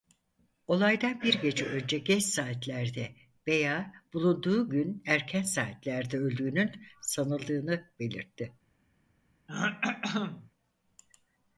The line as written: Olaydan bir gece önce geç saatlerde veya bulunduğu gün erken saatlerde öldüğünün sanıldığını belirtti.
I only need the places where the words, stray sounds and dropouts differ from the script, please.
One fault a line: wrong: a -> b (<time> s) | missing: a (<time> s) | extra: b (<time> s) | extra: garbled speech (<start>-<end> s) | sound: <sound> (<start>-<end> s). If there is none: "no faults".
sound: throat clearing (9.5-10.5 s)